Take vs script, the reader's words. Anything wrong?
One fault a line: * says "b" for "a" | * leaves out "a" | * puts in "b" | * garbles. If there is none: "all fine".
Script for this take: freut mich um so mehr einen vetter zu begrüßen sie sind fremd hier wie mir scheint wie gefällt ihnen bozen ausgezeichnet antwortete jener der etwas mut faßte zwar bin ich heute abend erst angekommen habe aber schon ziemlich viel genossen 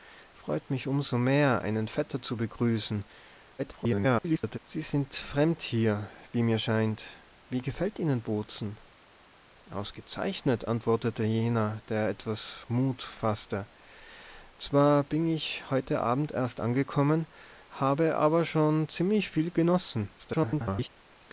* garbles
* garbles